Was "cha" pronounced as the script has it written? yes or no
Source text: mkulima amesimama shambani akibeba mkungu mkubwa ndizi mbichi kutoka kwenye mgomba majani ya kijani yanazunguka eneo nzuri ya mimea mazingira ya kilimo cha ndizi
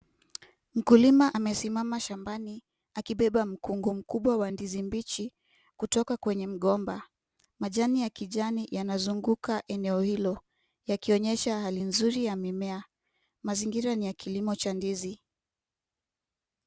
yes